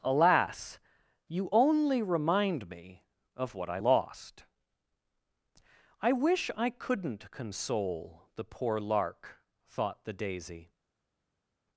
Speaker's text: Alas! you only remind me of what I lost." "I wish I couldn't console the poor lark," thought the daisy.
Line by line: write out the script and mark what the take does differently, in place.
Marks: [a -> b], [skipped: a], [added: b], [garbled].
Alas! you only remind me of what I lost." "I wish I couldn't console the poor lark," thought the daisy.